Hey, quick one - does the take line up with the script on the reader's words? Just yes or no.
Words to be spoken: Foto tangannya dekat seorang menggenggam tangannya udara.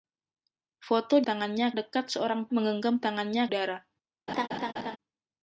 yes